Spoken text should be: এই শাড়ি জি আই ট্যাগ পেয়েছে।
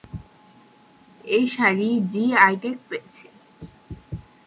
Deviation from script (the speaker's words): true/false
false